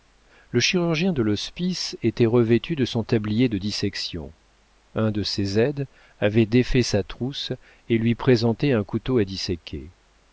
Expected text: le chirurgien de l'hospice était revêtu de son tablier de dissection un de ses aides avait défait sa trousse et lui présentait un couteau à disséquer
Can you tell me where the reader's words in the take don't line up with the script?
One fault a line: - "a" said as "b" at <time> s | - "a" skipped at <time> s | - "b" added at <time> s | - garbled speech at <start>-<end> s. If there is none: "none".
none